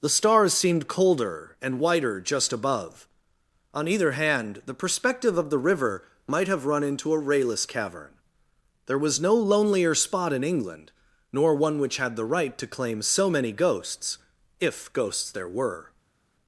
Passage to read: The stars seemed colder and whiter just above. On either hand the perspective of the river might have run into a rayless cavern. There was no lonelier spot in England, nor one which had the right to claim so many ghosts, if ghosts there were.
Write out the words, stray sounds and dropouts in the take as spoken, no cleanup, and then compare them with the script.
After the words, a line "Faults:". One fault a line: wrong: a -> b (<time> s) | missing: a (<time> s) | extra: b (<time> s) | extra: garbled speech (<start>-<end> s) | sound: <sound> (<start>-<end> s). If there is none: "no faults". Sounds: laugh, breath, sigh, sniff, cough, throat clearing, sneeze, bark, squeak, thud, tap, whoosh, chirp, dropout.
The stars seemed colder and whiter just above. On either hand the perspective of the river might have run into a rayless cavern. There was no lonelier spot in England, nor one which had the right to claim so many ghosts, if ghosts there were.
Faults:
no faults